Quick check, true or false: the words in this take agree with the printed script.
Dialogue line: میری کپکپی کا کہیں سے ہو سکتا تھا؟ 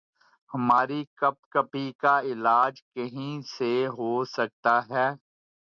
false